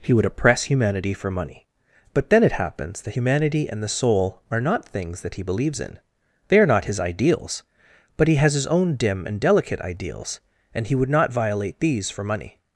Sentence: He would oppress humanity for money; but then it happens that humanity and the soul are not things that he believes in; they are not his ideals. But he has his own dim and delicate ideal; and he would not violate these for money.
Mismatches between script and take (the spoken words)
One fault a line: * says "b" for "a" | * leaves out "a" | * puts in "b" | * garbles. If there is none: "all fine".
* says "ideals" for "ideal"